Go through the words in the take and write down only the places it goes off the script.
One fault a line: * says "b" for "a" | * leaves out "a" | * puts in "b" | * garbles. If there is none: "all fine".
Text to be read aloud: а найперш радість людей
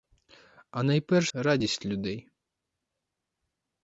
all fine